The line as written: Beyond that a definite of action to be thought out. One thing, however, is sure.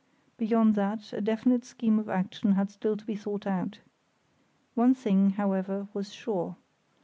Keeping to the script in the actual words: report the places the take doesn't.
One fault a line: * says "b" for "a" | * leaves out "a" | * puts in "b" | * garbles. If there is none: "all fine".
* puts in "scheme"
* puts in "had still"
* says "was" for "is"